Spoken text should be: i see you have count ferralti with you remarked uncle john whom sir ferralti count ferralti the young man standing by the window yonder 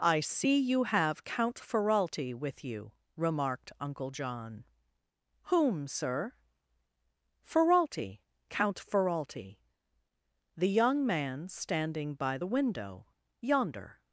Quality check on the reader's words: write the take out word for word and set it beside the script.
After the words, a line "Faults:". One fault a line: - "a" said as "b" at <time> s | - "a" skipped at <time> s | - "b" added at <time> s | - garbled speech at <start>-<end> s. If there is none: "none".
i see you have count ferralti with you remarked uncle john whom sir ferralti count ferralti the young man standing by the window yonder
Faults:
none